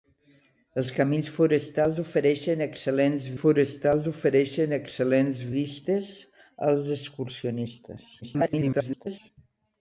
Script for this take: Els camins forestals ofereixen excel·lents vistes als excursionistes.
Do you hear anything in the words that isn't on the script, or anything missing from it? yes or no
yes